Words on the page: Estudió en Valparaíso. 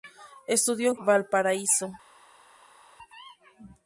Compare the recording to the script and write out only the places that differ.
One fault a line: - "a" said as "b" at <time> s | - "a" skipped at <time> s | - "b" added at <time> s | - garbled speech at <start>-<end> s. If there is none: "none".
none